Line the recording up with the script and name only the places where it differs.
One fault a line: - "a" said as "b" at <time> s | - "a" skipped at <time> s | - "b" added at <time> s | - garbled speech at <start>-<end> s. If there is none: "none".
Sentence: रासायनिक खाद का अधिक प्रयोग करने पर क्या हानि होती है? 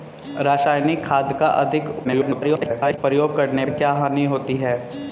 - garbled speech at 2.0-3.0 s
- "पर" skipped at 3.6 s